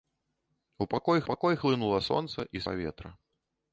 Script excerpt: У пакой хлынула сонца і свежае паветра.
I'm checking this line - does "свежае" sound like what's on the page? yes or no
no